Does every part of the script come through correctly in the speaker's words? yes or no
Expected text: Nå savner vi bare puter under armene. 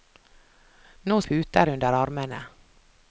no